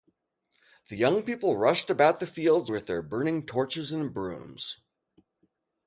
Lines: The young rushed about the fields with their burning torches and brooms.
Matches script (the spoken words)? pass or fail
fail